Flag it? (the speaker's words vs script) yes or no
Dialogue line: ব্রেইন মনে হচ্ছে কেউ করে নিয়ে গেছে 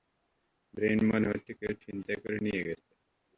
yes